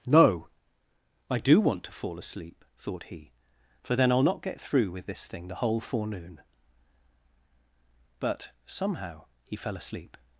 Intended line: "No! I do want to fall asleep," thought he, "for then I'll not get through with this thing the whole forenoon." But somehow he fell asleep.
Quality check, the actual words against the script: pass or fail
pass